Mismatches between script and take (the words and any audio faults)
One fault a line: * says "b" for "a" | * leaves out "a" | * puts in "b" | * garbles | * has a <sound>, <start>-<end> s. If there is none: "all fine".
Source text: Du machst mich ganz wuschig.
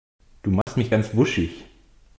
* has a dropout, 0.6-0.7 s